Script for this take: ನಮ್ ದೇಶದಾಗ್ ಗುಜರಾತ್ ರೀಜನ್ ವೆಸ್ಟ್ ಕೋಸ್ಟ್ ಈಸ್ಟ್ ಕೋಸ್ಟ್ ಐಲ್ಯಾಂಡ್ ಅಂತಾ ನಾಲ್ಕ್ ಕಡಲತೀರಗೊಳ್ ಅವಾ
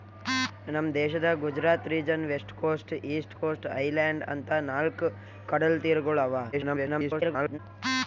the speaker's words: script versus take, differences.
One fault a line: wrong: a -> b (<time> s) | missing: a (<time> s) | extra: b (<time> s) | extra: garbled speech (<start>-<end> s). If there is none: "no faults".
extra: garbled speech (6.5-7.6 s)